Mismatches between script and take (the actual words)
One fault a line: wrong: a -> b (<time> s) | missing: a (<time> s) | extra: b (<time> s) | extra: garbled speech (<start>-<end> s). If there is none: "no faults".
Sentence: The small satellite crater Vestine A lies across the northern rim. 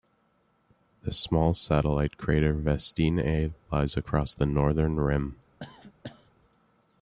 no faults